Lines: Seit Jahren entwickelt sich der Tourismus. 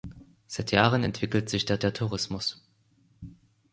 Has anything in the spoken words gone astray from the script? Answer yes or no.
yes